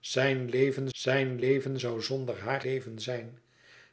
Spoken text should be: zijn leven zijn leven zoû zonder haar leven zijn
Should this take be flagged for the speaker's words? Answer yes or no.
no